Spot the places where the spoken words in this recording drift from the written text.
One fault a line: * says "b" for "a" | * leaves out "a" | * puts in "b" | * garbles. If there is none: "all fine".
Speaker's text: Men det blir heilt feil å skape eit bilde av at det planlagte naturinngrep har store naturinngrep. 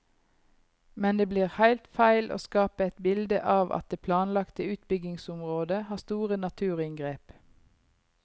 * says "utbyggingsområdet" for "naturinngrep"